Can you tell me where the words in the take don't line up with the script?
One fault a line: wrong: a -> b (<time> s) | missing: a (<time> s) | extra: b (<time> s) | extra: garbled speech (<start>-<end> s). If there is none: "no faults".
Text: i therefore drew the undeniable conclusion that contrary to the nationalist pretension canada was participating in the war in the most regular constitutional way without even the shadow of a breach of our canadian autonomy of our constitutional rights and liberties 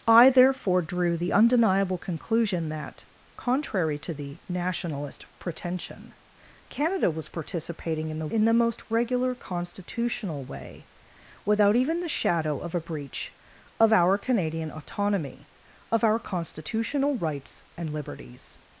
missing: war (8.3 s)